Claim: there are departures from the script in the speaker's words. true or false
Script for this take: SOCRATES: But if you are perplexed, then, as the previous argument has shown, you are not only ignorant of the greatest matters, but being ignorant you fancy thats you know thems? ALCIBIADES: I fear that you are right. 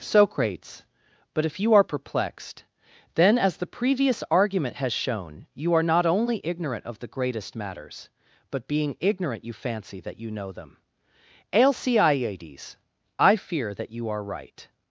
true